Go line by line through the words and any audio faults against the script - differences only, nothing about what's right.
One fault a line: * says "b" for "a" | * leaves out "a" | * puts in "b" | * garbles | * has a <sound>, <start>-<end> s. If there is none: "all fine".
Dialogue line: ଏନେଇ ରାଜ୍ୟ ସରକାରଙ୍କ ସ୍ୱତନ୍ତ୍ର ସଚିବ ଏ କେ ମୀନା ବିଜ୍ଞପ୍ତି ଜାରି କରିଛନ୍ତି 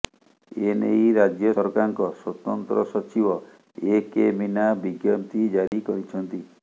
* has a dropout, 5.7-5.7 s